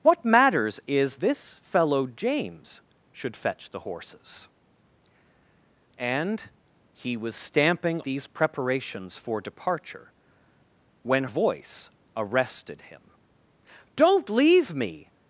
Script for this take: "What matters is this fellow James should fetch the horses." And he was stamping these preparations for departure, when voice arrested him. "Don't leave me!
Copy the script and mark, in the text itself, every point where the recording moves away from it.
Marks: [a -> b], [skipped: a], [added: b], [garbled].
"What matters is this fellow James should fetch the horses." And he was stamping these preparations for departure, when voice arrested him. "Don't leave me!